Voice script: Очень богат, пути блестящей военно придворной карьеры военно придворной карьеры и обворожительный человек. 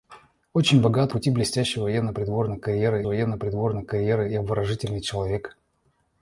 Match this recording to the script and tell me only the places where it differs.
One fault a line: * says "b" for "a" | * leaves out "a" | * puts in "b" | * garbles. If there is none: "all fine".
all fine